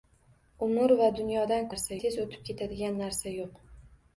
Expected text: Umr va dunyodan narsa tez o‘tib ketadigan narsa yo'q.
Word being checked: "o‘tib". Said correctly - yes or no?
yes